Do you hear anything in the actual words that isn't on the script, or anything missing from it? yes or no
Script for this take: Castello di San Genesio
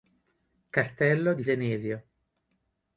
yes